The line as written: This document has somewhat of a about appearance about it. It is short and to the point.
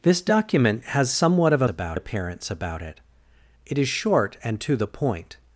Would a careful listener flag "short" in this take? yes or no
no